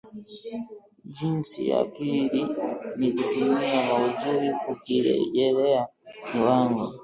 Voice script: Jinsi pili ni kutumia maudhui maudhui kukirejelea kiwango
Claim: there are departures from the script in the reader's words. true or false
true